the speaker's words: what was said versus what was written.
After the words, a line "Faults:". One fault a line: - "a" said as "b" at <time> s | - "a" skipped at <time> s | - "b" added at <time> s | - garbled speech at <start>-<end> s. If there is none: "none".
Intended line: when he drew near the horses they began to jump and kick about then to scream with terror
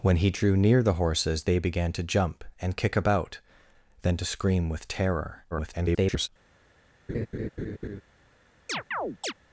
when he drew near the horses they began to jump and kick about then to scream with terror [garbled]
Faults:
- garbled speech at 5.5-6.3 s